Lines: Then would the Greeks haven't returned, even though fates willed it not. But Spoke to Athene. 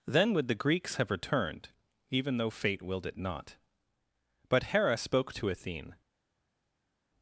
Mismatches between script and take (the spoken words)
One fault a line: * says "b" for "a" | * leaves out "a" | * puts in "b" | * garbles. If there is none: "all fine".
* says "have" for "haven't"
* says "fate" for "fates"
* puts in "Hera"